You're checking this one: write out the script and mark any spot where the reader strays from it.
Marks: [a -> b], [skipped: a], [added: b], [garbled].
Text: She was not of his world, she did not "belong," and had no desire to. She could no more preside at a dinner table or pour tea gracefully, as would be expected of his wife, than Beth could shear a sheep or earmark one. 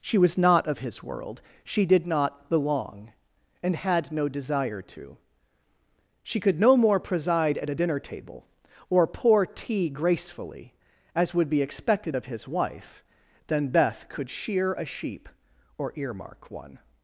She was not of his world, she did not "belong," and had no desire to. She could no more preside at a dinner table or pour tea gracefully, as would be expected of his wife, than Beth could shear a sheep or earmark one.